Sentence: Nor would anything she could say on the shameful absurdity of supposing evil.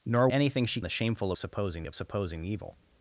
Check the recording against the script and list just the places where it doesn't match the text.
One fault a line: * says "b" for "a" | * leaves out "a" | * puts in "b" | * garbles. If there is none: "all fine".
* leaves out "would"
* leaves out "could say on"
* says "supposing" for "absurdity"